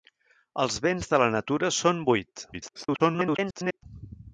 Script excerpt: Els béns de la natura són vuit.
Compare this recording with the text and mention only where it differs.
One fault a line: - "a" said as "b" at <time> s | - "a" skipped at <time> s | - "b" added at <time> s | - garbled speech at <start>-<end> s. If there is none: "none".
- garbled speech at 2.5-3.8 s